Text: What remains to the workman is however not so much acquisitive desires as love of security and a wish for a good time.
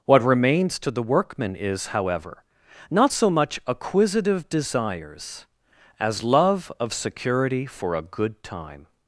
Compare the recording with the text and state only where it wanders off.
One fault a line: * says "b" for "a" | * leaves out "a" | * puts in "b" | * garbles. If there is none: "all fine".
* leaves out "and a wish"